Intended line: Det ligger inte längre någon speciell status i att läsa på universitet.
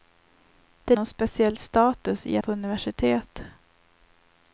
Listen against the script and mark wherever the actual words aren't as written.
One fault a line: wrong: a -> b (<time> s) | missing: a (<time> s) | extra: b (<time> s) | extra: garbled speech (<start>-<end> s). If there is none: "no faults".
missing: ligger inte längre (0.9 s)
missing: att läsa (2.4 s)